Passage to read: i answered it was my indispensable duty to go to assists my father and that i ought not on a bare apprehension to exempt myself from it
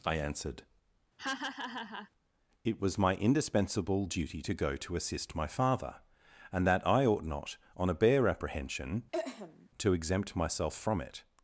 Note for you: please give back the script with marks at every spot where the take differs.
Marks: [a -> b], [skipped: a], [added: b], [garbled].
i answered it was my indispensable duty to go to [assists -> assist] my father and that i ought not on a bare apprehension to exempt myself from it